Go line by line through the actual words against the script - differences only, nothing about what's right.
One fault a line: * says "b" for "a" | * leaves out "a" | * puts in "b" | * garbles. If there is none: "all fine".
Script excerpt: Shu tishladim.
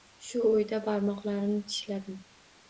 * puts in "oʻyda barmoqlarimni"